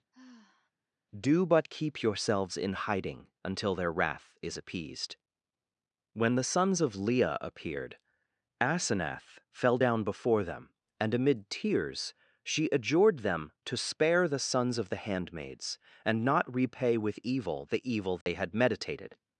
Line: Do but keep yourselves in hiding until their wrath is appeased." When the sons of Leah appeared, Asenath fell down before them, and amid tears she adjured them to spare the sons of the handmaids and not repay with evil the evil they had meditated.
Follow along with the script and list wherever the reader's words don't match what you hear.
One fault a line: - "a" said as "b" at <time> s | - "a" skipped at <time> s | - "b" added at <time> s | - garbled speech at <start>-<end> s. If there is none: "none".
none